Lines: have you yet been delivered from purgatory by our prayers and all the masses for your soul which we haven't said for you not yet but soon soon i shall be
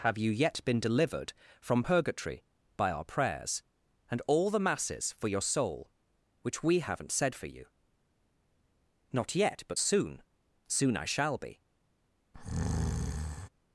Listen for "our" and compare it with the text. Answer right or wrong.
right